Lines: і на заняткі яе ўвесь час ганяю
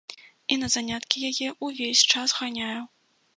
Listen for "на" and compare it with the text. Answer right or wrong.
right